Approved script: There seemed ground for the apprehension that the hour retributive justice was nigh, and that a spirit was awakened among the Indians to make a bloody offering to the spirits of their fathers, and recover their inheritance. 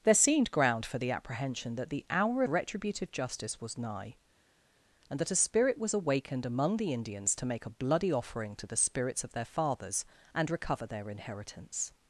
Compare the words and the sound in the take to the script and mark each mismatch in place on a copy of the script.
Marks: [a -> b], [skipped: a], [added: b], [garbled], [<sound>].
There seemed ground for the apprehension that the hour retributive justice was nigh, and that a spirit was awakened among the Indians to make a bloody offering to the spirits of their fathers, and recover their inheritance.